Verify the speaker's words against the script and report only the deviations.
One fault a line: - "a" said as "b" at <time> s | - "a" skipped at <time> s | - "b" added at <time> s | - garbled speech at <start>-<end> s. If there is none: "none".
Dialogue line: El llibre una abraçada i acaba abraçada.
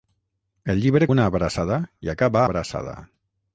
none